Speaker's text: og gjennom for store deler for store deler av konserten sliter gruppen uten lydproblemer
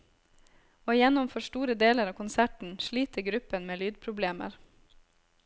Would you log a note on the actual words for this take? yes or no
yes